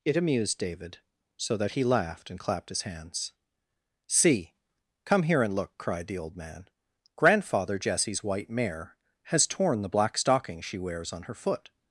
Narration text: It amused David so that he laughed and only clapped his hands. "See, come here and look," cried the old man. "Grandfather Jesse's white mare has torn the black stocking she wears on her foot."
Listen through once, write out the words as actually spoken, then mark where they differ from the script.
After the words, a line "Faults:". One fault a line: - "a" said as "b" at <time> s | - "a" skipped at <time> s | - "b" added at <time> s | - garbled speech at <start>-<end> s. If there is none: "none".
It amused David so that he laughed and clapped his hands. "See, come here and look," cried the old man. "Grandfather Jesse's white mare has torn the black stocking she wears on her foot."
Faults:
- "only" skipped at 2.4 s